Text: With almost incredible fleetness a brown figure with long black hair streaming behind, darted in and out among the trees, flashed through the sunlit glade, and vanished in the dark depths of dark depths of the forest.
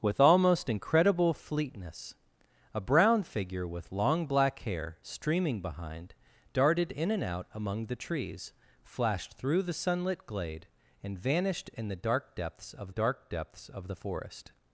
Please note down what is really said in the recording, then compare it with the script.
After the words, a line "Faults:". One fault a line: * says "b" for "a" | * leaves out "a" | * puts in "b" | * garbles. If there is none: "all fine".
With almost incredible fleetness a brown figure with long black hair streaming behind, darted in and out among the trees, flashed through the sunlit glade, and vanished in the dark depths of dark depths of the forest.
Faults:
all fine